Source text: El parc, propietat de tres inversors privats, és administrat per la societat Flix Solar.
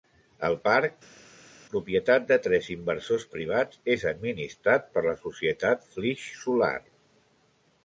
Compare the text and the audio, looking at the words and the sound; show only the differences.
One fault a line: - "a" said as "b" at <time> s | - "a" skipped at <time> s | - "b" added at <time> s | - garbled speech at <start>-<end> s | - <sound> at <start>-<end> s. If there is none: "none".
none